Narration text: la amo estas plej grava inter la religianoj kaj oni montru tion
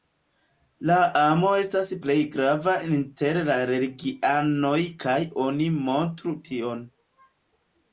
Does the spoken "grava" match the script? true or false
true